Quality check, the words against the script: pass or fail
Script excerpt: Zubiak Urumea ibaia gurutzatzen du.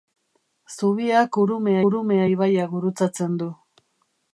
fail